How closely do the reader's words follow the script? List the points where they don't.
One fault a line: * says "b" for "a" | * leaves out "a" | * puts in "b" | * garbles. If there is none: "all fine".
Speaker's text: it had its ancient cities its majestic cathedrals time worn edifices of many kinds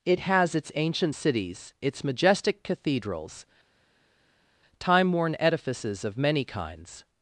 * says "has" for "had"